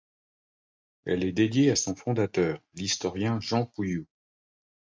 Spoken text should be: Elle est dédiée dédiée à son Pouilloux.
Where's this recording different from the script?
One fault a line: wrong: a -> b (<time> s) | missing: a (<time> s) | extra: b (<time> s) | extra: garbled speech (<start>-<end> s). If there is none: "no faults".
missing: dédiée (1.7 s)
extra: fondateur l'historien Jean (1.9 s)